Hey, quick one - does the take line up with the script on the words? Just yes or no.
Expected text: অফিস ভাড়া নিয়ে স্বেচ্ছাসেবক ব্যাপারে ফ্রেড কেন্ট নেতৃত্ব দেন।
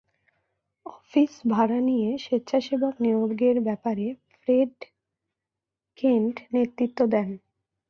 no